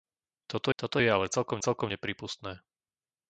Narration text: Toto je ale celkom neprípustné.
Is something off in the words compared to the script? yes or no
yes